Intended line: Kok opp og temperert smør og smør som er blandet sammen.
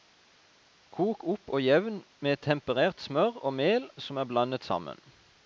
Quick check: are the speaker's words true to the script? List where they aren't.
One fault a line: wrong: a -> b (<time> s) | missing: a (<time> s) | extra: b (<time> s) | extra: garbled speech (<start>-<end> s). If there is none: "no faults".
extra: jevn med (1.6 s)
wrong: smør -> mel (3.6 s)